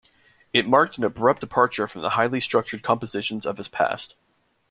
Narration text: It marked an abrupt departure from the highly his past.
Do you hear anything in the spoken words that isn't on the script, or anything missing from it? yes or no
yes